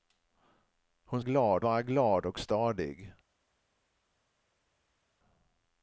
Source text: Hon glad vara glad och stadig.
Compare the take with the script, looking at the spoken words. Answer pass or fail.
pass